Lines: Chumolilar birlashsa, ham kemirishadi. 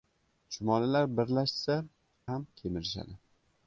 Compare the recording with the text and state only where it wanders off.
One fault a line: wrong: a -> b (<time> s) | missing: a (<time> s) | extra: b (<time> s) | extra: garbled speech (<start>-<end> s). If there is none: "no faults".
no faults